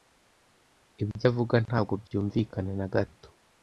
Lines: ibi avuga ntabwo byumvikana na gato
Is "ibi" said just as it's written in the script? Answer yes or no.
no